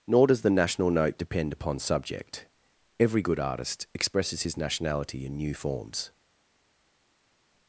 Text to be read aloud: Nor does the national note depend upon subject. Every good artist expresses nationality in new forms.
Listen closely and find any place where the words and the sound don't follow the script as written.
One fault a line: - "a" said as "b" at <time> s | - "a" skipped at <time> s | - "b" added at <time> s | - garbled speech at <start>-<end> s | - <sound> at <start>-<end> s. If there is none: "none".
- "his" added at 4.4 s